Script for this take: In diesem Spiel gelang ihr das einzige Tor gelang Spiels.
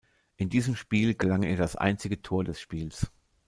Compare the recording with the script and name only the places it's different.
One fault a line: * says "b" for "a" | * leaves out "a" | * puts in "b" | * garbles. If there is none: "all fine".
* says "des" for "gelang"